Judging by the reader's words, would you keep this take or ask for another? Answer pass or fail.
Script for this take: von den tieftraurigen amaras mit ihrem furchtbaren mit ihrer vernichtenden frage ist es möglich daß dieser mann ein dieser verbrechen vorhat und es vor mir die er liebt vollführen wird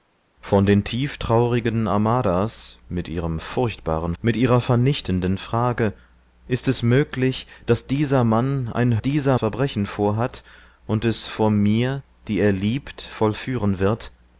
pass